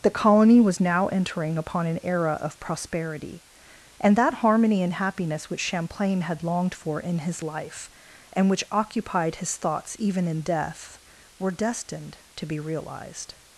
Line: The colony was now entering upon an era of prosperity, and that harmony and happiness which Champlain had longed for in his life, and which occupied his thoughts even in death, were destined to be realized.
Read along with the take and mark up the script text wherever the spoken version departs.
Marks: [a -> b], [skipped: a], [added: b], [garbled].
The colony was now entering upon an era of prosperity, and that harmony and happiness which Champlain had longed for in his life, and which occupied his thoughts even in death, were destined to be realized.